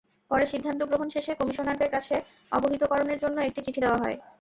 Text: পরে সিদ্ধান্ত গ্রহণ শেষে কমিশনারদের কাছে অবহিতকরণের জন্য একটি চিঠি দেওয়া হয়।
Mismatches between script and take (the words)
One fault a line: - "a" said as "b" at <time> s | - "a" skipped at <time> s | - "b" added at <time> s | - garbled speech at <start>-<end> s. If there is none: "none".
none